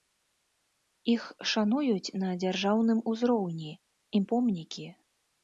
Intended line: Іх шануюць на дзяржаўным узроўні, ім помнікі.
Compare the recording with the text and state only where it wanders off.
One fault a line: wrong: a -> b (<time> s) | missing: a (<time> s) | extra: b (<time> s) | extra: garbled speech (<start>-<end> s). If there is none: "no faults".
no faults